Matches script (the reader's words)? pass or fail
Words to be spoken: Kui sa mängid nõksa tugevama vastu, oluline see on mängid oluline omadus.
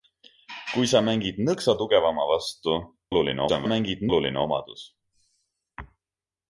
pass